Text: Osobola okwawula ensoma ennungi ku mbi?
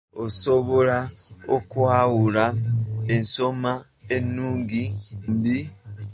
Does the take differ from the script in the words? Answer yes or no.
yes